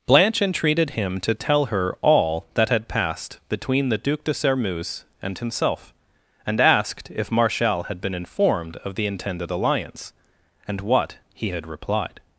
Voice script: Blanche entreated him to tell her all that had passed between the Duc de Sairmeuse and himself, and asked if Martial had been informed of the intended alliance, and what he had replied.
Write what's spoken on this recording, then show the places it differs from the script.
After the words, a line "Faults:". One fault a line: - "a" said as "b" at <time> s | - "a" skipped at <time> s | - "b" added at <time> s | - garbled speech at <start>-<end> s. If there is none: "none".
Blanche entreated him to tell her all that had passed between the Duc de Sairmeuse and himself, and asked if Martial had been informed of the intended alliance, and what he had replied.
Faults:
none